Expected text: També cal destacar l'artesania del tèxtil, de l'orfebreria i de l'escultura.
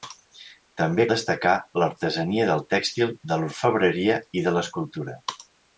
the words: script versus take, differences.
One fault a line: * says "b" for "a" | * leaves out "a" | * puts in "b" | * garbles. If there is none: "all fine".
* leaves out "cal"